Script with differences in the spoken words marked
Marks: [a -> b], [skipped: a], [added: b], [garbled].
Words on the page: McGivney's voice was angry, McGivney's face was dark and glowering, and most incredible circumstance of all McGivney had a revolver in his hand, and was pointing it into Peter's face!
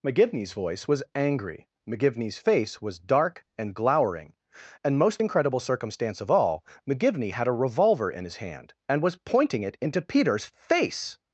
McGivney's voice was angry, McGivney's face was dark and glowering, and most incredible circumstance of all McGivney had a revolver in his hand, and was pointing it into Peter's face!